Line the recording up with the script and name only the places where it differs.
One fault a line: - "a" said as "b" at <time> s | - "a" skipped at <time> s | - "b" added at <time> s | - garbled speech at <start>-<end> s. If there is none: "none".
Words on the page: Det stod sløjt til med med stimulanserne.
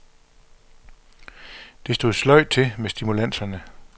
- "med" skipped at 2.9 s